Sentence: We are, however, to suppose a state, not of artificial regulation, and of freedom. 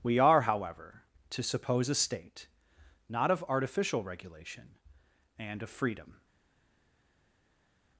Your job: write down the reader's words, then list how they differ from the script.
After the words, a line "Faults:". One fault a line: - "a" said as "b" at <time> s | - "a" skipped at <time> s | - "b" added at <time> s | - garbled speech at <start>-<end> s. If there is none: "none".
We are, however, to suppose a state, not of artificial regulation, and of freedom.
Faults:
none